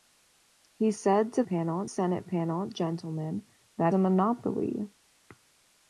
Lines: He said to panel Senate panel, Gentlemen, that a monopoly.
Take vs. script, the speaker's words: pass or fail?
pass